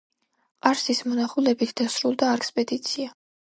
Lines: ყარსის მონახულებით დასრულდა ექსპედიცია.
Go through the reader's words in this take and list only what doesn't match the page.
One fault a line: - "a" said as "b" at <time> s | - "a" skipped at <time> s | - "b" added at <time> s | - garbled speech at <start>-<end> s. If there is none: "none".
none